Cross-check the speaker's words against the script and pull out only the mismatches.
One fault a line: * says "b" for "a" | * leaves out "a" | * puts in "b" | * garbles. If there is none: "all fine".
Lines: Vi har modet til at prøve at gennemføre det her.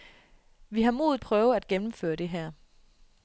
* leaves out "til at"